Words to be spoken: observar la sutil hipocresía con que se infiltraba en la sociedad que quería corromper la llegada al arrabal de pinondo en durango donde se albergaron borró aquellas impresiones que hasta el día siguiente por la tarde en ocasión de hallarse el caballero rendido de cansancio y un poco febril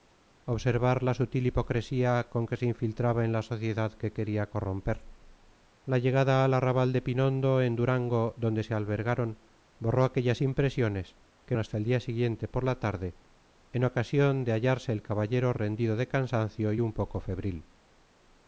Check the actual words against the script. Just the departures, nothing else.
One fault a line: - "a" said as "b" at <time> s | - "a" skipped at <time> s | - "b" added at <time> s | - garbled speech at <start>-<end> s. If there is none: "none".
none